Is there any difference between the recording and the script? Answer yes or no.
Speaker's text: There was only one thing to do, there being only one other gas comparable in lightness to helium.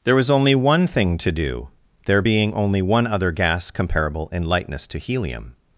no